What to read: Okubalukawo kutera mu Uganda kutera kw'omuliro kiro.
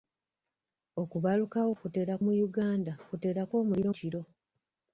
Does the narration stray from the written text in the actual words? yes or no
no